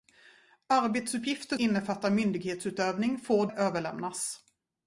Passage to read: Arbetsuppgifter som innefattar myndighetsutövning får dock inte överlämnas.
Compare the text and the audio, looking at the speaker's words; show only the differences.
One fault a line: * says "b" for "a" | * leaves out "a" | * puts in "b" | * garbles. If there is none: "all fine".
* leaves out "som"
* leaves out "dock inte"